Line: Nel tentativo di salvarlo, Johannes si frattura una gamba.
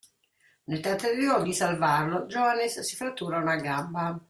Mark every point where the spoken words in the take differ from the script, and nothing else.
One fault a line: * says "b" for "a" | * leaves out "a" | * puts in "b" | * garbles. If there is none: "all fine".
all fine